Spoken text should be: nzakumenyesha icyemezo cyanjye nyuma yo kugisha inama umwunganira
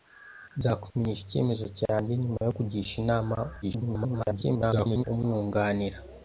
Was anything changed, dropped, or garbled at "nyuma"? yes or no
no